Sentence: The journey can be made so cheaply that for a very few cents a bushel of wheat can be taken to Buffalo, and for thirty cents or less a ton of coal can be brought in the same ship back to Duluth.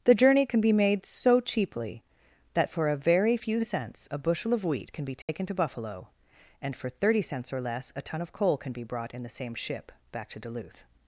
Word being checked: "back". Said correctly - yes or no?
yes